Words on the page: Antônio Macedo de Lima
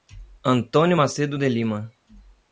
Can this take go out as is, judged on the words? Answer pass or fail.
pass